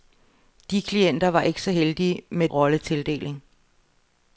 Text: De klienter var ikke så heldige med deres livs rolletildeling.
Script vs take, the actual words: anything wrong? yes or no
yes